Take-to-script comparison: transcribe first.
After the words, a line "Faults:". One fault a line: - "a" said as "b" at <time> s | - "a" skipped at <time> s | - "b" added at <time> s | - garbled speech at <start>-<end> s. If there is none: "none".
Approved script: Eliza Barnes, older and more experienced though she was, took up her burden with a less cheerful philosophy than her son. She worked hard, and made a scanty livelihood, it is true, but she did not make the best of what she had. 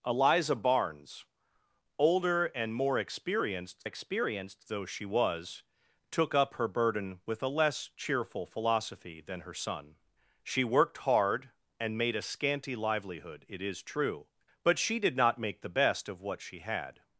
Eliza Barnes, older and more experienced experienced though she was, took up her burden with a less cheerful philosophy than her son. She worked hard, and made a scanty livelihood, it is true, but she did not make the best of what she had.
Faults:
- "experienced" added at 3.8 s